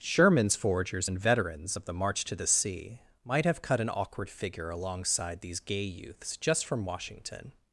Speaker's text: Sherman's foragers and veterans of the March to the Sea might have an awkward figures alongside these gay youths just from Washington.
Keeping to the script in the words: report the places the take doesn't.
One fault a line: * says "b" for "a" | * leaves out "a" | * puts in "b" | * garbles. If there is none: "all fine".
* puts in "cut"
* says "figure" for "figures"